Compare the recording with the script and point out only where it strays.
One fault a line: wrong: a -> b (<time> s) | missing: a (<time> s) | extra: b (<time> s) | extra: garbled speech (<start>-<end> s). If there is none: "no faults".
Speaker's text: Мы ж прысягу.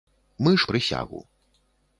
no faults